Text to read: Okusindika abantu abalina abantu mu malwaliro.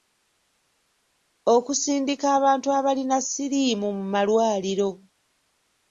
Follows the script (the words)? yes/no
no